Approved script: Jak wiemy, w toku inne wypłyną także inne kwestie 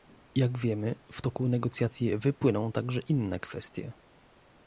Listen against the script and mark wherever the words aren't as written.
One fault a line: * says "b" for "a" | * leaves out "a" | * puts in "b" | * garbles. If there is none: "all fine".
* says "negocjacji" for "inne"